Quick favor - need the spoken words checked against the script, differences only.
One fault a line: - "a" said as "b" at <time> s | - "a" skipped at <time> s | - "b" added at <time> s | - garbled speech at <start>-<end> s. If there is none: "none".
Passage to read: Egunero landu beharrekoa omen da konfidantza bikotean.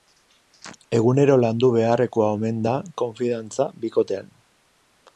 none